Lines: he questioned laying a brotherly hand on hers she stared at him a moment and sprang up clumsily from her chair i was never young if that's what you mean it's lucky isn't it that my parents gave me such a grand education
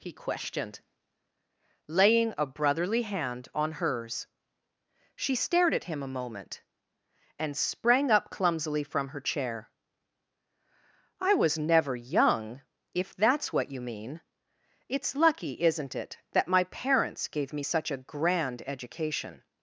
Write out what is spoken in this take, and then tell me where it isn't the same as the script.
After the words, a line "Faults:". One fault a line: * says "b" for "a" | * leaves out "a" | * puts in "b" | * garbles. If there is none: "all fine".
he questioned laying a brotherly hand on hers she stared at him a moment and sprang up clumsily from her chair i was never young if that's what you mean it's lucky isn't it that my parents gave me such a grand education
Faults:
all fine